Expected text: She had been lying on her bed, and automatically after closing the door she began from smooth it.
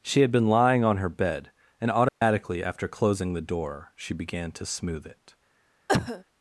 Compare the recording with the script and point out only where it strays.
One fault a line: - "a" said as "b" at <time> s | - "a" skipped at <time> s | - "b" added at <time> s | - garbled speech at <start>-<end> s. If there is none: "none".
- "from" said as "to" at 4.5 s